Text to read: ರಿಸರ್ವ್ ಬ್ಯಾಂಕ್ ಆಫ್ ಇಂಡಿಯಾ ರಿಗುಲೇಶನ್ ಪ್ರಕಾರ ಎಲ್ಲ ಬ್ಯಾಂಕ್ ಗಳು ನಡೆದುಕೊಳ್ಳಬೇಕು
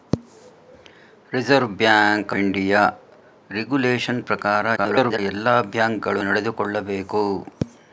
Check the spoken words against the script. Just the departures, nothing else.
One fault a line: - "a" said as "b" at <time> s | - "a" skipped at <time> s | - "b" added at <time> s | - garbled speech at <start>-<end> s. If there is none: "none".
- "ಆಫ್" skipped at 2.3 s
- garbled speech at 4.8-5.2 s